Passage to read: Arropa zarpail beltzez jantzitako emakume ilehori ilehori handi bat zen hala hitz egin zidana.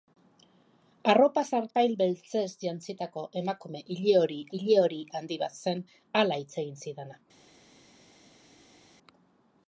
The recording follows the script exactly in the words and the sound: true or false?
true